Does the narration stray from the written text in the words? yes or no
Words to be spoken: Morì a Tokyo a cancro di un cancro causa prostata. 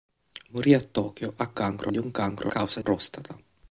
no